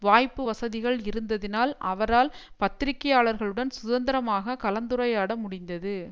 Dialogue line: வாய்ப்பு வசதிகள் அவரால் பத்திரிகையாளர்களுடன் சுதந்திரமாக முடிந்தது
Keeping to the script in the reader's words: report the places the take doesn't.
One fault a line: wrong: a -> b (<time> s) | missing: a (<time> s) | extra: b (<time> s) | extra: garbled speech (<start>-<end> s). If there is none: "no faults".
extra: இருந்ததினால் (1.0 s)
extra: கலந்துரையாட (4.6 s)